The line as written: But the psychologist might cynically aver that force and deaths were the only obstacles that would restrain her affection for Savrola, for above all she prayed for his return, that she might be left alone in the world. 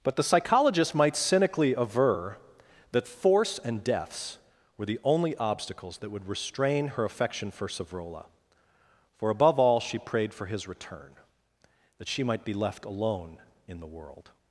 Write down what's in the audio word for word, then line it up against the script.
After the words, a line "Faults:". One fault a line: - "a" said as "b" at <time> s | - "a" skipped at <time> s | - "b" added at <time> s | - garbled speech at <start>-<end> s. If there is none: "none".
But the psychologist might cynically aver that force and deaths were the only obstacles that would restrain her affection for Savrola, for above all she prayed for his return, that she might be left alone in the world.
Faults:
none